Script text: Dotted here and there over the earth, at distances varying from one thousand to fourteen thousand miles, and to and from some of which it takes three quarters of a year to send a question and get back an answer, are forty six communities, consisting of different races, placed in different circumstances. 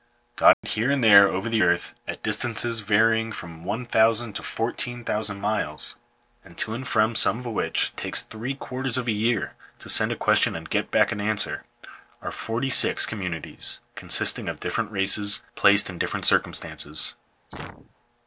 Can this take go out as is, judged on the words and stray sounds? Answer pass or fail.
fail